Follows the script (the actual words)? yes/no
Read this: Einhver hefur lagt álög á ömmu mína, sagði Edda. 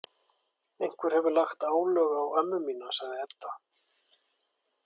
yes